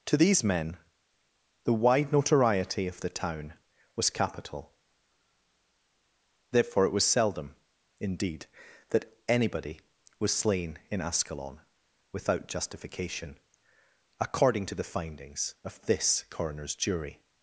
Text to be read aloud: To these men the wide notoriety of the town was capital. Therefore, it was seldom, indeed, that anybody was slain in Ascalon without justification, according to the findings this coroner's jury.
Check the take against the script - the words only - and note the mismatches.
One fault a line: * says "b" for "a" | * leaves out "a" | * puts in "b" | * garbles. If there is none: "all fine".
* puts in "of"